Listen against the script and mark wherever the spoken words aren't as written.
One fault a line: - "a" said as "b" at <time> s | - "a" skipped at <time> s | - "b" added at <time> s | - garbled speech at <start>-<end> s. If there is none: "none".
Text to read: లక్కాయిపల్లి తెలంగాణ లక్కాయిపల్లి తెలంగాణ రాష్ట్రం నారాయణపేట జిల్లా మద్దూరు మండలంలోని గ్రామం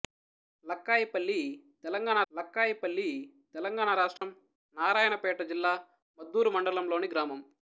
none